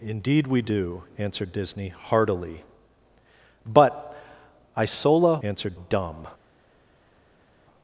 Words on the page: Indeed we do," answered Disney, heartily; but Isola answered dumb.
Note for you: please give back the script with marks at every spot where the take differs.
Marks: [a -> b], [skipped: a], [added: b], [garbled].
Indeed we do," answered Disney, heartily; but Isola answered dumb.